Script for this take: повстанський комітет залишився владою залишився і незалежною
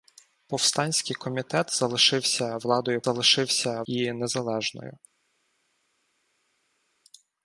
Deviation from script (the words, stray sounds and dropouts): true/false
false